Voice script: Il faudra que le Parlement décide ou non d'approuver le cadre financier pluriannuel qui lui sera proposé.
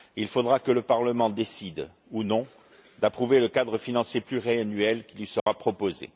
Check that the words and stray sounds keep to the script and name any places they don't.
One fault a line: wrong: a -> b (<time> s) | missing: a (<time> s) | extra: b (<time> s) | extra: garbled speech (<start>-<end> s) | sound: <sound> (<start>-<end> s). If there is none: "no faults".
sound: dropout (5.4-5.5 s)